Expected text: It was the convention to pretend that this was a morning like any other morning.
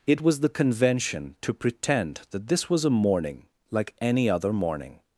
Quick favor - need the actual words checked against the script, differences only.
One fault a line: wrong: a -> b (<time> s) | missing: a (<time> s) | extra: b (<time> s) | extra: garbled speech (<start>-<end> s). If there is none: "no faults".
no faults